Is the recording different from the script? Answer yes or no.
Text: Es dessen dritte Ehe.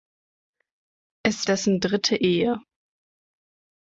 no